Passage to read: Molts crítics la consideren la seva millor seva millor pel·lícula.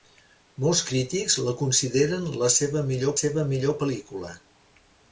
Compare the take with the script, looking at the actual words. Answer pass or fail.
pass